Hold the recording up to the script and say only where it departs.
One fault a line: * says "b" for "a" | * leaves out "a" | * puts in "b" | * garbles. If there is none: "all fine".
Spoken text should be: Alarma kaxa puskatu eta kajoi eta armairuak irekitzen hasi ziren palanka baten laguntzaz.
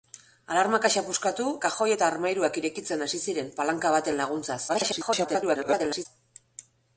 * leaves out "eta"
* garbles